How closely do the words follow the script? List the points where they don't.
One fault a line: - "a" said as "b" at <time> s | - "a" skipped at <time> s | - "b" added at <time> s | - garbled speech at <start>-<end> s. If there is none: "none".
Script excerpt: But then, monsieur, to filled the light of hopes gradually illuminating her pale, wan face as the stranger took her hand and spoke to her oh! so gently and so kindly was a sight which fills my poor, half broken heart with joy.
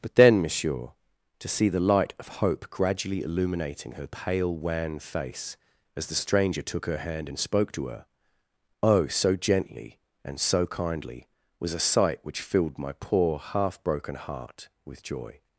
- "filled" said as "see" at 1.5 s
- "hopes" said as "hope" at 2.4 s
- "fills" said as "filled" at 12.4 s